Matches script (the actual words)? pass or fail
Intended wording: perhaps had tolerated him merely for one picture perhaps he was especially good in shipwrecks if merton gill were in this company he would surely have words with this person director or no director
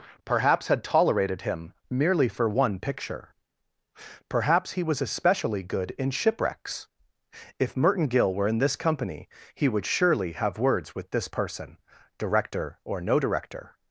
pass